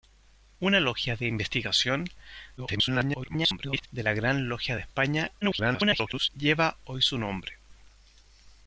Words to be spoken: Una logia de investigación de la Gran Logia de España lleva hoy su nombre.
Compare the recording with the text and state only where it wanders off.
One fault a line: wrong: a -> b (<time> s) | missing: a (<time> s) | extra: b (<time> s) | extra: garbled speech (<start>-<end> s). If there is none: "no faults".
extra: garbled speech (2.6-3.9 s)
extra: garbled speech (5.4-6.3 s)